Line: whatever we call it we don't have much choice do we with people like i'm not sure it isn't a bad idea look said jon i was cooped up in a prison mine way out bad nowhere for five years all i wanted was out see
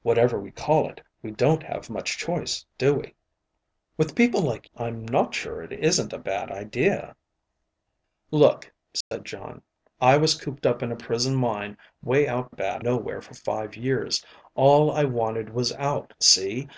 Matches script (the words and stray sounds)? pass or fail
fail